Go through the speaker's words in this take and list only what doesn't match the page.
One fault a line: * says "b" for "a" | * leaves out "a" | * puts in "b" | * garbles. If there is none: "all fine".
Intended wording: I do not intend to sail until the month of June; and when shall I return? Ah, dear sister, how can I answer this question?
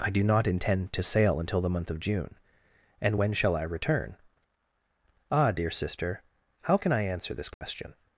all fine